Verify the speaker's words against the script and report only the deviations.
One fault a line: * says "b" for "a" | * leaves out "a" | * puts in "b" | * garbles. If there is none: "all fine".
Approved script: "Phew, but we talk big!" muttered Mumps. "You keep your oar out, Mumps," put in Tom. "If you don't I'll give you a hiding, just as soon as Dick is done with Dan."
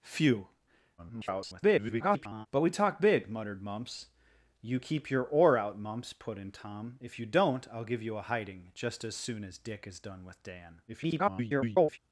* garbles
* garbles